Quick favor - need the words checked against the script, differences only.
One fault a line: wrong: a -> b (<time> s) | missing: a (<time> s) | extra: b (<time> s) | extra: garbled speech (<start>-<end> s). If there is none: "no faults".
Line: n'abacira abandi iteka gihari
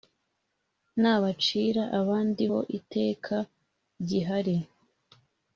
extra: ho (2.5 s)